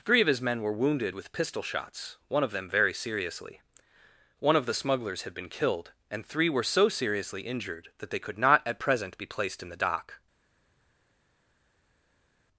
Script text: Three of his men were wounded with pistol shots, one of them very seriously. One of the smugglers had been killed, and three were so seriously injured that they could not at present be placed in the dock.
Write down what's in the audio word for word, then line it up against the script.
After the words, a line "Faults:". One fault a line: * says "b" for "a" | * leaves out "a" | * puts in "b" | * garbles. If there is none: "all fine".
Three of his men were wounded with pistol shots, one of them very seriously. One of the smugglers had been killed, and three were so seriously injured that they could not at present be placed in the dock.
Faults:
all fine